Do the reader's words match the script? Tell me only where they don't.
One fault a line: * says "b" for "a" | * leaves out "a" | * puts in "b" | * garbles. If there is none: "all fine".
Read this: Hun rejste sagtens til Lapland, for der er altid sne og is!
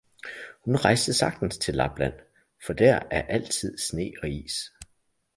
all fine